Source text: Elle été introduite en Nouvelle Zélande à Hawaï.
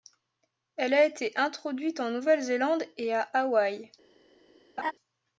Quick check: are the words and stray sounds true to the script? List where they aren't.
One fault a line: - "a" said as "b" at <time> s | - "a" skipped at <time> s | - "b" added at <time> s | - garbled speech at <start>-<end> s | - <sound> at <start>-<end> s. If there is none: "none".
- "a" added at 0.9 s
- "et" added at 3.0 s
- laugh at 4.8-4.9 s